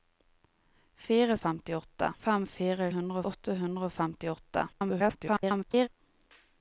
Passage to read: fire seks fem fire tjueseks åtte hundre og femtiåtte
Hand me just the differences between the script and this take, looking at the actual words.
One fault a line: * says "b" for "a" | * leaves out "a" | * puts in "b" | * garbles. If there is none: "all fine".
* says "femtiåtte" for "seks"
* says "hundre" for "tjueseks"
* garbles